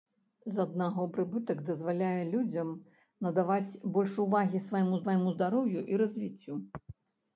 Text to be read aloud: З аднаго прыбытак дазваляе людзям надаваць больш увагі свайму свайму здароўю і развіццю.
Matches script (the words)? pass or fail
pass